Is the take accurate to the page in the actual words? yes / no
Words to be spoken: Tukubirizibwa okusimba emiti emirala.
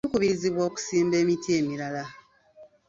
yes